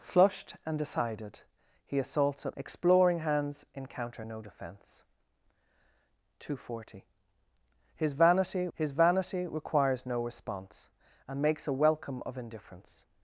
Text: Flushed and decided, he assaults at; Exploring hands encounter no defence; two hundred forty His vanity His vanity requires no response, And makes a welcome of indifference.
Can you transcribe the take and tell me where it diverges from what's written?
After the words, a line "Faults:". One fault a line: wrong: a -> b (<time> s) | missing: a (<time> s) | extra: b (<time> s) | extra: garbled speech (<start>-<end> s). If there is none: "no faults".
Flushed and decided, he assaults at; Exploring hands encounter no defence; two hundred forty His vanity His vanity requires no response, And makes a welcome of indifference.
Faults:
no faults